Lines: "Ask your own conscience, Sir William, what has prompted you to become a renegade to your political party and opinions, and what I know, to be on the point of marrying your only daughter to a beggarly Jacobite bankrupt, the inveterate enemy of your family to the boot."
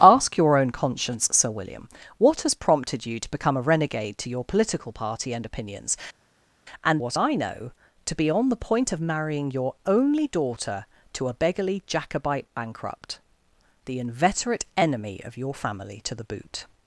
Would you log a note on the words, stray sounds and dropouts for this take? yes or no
no